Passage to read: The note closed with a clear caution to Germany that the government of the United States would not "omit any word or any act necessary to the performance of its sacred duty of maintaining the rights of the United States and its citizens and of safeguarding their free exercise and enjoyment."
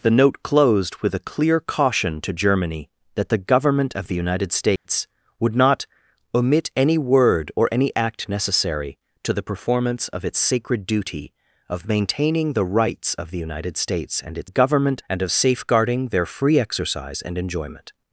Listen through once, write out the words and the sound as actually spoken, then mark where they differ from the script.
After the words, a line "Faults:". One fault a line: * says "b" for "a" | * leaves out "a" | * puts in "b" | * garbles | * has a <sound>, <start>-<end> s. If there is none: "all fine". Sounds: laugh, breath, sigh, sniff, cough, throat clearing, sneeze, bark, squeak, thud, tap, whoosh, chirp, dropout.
The note closed with a clear caution to Germany that the government of the United States would not "omit any word or any act necessary to the performance of its sacred duty of maintaining the rights of the United States and its government and of safeguarding their free exercise and enjoyment."
Faults:
* has a dropout, 4.8-4.9 s
* says "government" for "citizens"